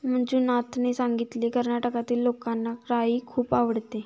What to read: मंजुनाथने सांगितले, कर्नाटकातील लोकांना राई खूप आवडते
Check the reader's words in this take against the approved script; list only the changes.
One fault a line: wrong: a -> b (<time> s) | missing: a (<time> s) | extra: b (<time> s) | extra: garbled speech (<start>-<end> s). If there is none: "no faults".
no faults